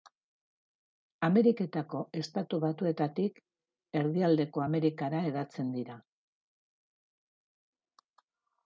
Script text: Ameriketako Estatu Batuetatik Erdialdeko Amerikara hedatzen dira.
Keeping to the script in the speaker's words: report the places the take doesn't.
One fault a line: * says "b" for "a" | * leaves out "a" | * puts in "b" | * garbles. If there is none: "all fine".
all fine